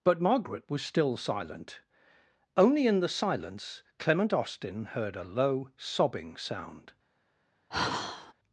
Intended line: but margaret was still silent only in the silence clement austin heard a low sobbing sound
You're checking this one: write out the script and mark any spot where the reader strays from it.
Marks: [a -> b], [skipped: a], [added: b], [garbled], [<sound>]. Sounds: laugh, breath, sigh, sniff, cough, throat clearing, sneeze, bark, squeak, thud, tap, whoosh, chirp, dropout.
but margaret was still silent only in the silence clement austin heard a low sobbing sound [sigh]